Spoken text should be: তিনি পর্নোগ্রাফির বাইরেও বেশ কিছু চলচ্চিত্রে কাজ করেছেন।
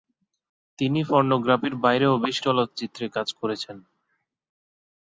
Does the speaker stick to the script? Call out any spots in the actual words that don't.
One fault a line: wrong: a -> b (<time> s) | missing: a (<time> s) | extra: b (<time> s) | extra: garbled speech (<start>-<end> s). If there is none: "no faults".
missing: কিছু (2.4 s)